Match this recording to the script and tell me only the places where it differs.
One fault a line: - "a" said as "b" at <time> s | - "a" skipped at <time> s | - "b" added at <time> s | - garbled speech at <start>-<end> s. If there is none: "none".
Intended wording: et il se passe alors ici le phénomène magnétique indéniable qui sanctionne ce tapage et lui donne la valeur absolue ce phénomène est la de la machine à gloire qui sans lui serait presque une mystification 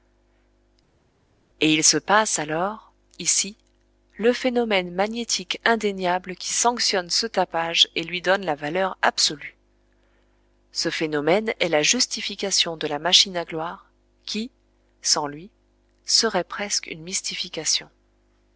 - "justification" added at 11.8 s